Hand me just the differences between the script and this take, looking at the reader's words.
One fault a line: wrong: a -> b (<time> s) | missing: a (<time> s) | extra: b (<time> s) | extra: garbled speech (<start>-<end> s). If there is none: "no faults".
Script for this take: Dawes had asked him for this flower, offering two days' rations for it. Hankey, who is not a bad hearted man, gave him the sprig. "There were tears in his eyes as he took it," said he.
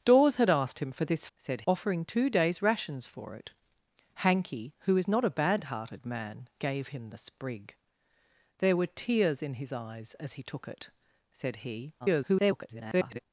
wrong: flower -> said (1.4 s)
extra: garbled speech (12.0-13.2 s)